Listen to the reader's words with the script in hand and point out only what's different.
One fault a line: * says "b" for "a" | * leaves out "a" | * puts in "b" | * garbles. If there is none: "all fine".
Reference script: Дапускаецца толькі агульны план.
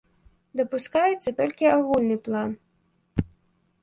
all fine